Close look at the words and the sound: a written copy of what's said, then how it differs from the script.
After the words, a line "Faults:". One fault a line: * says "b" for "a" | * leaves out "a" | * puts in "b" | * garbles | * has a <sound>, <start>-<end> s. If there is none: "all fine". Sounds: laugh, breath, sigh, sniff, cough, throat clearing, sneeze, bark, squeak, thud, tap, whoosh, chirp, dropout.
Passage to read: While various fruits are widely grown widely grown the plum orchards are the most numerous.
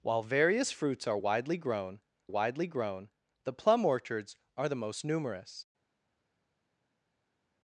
While various fruits are widely grown widely grown the plum orchards are the most numerous.
Faults:
all fine